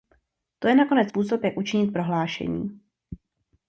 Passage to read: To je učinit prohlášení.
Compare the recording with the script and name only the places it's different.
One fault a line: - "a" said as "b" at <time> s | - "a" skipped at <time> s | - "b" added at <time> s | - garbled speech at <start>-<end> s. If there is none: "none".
- "nakonec způsob jak" added at 0.8 s